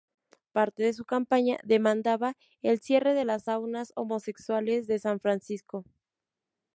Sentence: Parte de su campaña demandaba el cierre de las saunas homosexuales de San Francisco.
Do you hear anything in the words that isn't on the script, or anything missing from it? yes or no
no